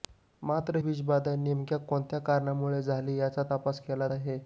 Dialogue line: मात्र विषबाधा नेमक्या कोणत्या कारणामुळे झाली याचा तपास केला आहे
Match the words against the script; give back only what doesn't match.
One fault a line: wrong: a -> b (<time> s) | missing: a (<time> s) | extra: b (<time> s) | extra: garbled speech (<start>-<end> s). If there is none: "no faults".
no faults